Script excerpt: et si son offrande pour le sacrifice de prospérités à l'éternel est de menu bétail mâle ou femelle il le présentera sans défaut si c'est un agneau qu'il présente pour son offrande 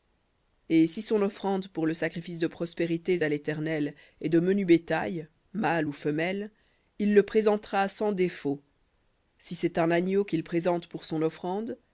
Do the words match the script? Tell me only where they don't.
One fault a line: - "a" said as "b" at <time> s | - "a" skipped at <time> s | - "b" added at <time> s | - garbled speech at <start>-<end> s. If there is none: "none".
none